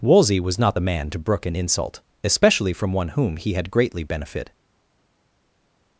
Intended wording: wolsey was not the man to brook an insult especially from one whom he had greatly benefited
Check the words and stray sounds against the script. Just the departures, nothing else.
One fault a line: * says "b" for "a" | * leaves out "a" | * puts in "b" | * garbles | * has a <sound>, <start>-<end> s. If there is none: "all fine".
all fine